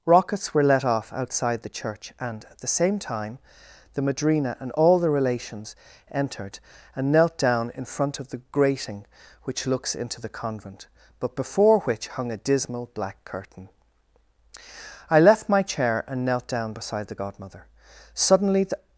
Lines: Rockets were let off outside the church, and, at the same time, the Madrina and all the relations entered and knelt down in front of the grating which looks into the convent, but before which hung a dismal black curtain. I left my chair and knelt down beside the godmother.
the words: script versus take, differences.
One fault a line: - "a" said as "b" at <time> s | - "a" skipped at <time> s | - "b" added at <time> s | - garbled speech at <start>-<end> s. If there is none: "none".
- "Suddenly the" added at 18.1 s